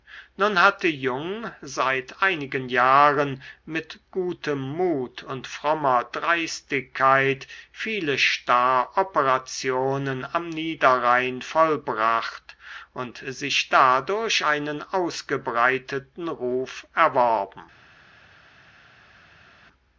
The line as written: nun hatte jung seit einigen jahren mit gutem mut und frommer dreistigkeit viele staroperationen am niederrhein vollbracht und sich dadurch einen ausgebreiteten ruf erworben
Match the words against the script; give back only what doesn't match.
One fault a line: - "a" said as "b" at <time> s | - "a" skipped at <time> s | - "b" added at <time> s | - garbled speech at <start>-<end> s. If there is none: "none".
none